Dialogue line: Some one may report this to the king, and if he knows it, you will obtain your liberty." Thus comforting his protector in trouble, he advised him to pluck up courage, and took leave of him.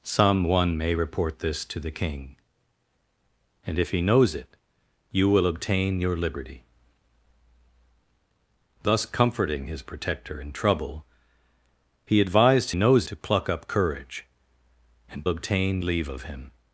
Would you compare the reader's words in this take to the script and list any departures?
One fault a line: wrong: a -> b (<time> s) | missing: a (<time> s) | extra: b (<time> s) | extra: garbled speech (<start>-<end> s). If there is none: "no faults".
wrong: him -> knows (12.7 s)
wrong: took -> obtain (15.3 s)